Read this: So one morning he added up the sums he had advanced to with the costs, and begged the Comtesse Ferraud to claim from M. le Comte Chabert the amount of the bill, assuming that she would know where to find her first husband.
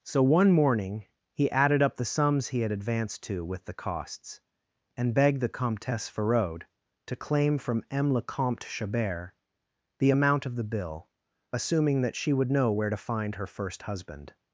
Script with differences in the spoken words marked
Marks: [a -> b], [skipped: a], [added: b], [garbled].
So one morning he added up the sums he had advanced to with the costs, and begged the Comtesse Ferraud to claim from M. le Comte Chabert the amount of the bill, assuming that she would know where to find her first husband.